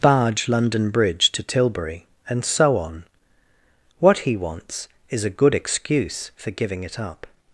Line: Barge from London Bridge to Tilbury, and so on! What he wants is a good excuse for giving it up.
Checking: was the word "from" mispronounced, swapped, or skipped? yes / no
yes